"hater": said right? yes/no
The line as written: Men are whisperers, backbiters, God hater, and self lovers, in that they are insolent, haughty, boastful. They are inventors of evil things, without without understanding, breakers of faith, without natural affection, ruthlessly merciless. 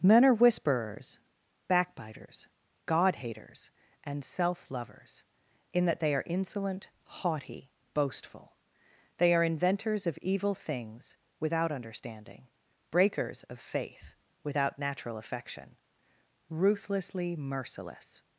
no